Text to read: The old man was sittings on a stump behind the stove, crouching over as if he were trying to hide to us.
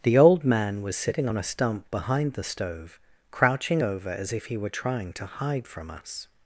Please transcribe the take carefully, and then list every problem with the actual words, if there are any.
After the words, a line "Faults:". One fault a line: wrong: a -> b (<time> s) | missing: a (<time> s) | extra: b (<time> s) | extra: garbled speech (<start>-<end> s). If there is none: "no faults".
The old man was sitting on a stump behind the stove, crouching over as if he were trying to hide from us.
Faults:
wrong: sittings -> sitting (0.9 s)
wrong: to -> from (5.7 s)